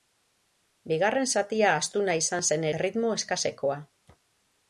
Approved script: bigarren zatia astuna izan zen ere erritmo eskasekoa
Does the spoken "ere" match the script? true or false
false